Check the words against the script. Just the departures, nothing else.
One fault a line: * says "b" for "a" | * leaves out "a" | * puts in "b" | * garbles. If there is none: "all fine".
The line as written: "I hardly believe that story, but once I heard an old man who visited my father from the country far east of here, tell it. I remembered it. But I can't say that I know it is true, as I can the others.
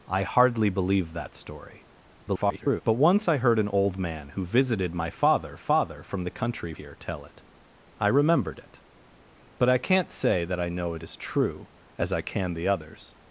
* garbles
* puts in "father"
* leaves out "far east of"